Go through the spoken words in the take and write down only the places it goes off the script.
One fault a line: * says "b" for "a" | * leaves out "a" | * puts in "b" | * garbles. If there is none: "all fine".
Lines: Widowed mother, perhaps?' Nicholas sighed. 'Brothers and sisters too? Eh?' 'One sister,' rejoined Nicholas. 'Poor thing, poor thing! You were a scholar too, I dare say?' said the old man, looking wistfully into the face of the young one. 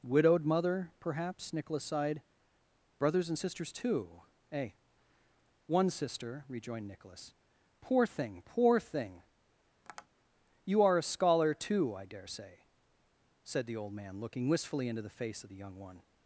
* says "are" for "were"